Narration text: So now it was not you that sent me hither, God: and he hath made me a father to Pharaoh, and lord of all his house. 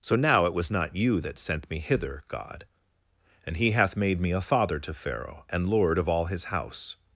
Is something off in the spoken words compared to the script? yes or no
no